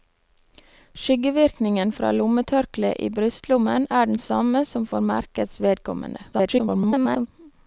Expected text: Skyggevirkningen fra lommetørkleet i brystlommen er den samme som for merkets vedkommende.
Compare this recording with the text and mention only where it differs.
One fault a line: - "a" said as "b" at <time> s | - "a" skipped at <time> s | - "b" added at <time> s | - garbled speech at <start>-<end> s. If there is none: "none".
- garbled speech at 6.3-7.3 s